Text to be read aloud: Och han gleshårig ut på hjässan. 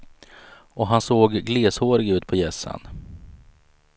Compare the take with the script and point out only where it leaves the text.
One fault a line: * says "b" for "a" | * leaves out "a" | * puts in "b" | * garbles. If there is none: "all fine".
* puts in "såg"